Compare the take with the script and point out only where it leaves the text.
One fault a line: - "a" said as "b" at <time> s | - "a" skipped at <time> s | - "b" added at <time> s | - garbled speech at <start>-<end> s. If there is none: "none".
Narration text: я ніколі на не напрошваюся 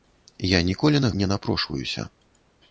none